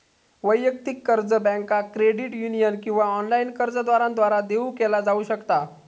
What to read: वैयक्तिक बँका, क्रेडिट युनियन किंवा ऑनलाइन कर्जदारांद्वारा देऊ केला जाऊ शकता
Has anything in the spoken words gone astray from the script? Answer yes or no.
yes